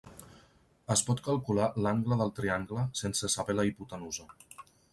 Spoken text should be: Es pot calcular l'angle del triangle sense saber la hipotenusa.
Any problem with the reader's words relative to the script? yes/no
no